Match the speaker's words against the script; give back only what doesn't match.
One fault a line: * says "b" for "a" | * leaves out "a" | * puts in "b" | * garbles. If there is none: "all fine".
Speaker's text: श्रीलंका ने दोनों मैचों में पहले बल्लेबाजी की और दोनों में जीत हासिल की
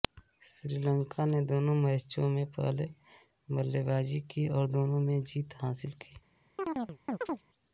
all fine